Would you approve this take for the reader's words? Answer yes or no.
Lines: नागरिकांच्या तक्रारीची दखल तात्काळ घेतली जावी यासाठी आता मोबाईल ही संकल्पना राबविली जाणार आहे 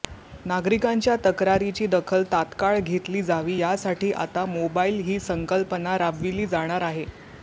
yes